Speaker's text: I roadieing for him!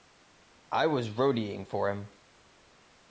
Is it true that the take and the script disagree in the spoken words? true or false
true